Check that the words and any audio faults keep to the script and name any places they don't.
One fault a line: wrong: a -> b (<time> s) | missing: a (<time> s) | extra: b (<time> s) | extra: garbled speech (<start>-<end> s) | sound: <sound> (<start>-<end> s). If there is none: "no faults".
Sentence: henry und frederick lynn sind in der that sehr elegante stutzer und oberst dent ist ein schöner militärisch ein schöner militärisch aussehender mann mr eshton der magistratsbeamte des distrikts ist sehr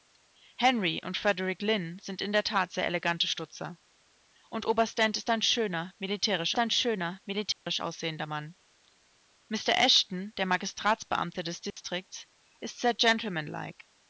sound: dropout (7.5-7.7 s)
sound: dropout (11.7-11.8 s)